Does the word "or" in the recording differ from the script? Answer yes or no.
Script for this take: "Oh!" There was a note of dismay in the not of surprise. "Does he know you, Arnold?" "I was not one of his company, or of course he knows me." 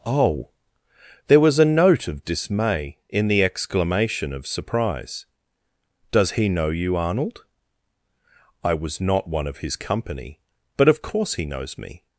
yes